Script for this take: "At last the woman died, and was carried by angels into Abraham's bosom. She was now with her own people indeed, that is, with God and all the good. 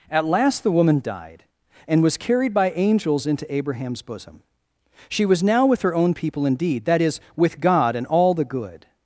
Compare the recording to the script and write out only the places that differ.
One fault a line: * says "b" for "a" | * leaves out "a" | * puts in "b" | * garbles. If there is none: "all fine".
all fine